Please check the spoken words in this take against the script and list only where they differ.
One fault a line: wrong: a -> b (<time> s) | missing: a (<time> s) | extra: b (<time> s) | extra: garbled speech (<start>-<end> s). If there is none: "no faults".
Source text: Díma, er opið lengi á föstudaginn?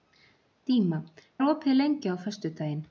no faults